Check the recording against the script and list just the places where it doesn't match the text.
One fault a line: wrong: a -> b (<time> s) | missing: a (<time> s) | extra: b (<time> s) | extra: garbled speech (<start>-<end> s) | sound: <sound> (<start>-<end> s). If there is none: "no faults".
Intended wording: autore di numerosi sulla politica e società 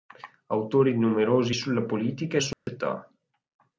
sound: dropout (2.5-2.7 s)